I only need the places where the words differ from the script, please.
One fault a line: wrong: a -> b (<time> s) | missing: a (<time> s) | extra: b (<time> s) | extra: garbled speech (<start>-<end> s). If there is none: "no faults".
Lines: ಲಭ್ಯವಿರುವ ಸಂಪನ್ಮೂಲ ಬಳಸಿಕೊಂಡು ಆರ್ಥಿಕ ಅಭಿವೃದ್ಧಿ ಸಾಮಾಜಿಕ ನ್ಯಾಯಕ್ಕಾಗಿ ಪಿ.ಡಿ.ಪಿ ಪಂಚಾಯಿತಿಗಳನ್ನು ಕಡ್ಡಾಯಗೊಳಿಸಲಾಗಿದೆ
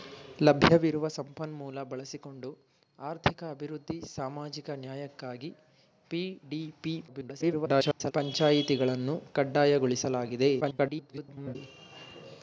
extra: garbled speech (7.1-8.1 s)
extra: garbled speech (10.6-11.6 s)